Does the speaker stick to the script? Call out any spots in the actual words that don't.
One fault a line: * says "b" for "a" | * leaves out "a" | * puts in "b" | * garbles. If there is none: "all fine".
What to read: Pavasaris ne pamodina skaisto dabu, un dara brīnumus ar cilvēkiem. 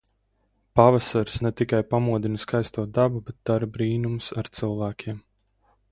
* puts in "tikai"
* says "bet" for "un"